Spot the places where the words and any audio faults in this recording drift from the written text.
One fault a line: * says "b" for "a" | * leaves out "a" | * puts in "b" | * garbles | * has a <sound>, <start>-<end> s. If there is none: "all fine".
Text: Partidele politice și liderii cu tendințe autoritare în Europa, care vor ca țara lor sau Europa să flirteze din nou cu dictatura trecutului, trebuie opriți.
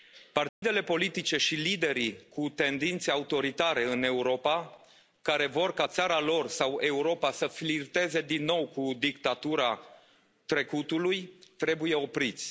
* has a dropout, 0.5-0.6 s